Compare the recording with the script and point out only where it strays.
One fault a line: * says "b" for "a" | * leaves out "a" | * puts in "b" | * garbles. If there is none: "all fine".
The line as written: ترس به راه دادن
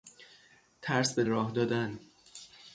all fine